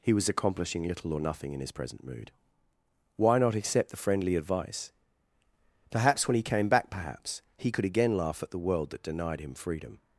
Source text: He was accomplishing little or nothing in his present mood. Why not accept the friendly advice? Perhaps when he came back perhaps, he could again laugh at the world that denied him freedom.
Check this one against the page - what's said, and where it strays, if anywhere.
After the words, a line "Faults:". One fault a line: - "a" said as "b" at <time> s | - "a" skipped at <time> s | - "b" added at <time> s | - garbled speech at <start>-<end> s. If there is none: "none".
He was accomplishing little or nothing in his present mood. Why not accept the friendly advice? Perhaps when he came back perhaps, he could again laugh at the world that denied him freedom.
Faults:
none